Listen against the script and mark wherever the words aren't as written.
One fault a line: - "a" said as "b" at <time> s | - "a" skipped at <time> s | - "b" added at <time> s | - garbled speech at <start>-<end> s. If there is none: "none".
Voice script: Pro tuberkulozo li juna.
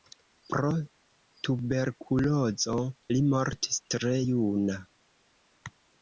- "mortis tre" added at 3.3 s